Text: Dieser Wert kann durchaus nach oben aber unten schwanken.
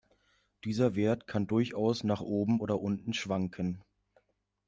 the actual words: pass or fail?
fail